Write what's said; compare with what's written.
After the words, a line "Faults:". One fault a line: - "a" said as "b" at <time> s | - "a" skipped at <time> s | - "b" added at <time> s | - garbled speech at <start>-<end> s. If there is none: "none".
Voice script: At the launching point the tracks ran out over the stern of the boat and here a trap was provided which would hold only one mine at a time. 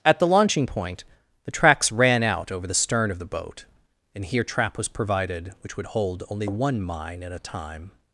At the launching point the tracks ran out over the stern of the boat and here trap was provided which would hold only one mine at a time.
Faults:
- "a" skipped at 4.4 s